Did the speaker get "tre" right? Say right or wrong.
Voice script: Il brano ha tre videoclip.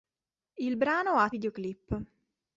wrong